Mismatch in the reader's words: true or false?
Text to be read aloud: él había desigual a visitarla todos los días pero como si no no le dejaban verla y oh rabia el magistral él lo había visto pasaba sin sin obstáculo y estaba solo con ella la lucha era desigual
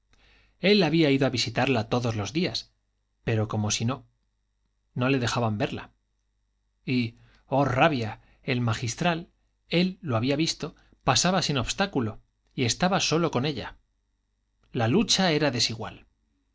true